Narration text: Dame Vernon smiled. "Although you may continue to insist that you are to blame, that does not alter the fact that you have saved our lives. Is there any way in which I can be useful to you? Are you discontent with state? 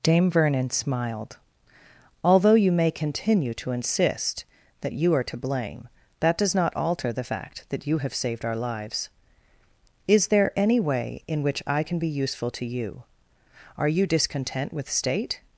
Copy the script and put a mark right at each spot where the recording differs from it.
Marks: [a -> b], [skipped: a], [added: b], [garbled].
Dame Vernon smiled. "Although you may continue to insist that you are to blame, that does not alter the fact that you have saved our lives. Is there any way in which I can be useful to you? Are you discontent with state?